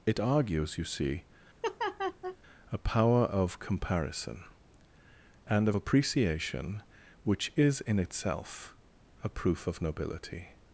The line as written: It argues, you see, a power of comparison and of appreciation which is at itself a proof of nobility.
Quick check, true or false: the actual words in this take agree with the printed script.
false